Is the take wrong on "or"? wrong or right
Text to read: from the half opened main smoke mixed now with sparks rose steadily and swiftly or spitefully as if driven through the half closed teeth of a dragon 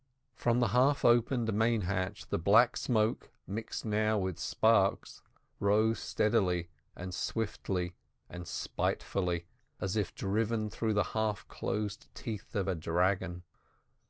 wrong